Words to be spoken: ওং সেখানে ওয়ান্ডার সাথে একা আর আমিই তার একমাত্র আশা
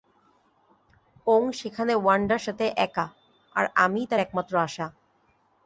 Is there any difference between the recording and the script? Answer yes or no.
no